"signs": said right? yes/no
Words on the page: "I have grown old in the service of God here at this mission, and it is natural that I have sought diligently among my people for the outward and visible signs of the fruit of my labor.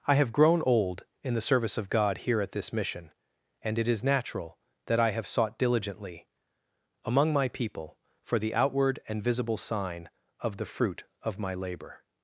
no